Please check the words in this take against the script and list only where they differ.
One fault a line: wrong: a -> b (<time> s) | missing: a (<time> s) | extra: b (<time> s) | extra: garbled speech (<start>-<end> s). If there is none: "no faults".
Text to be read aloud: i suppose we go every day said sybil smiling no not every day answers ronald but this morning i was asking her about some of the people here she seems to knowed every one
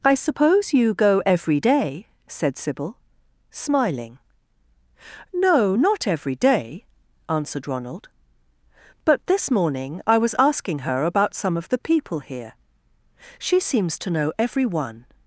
wrong: we -> you (0.7 s)
wrong: answers -> answered (7.3 s)
wrong: knowed -> know (14.1 s)